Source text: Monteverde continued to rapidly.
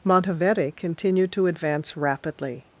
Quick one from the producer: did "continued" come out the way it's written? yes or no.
yes